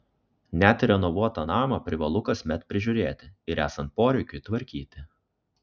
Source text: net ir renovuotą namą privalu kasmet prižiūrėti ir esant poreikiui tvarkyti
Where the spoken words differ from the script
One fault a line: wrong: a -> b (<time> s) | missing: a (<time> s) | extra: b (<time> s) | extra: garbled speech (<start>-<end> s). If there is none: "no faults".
no faults